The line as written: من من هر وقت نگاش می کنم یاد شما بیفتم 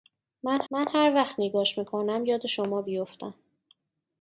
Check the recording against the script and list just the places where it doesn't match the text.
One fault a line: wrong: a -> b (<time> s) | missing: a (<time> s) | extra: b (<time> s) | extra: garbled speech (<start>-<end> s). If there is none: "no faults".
no faults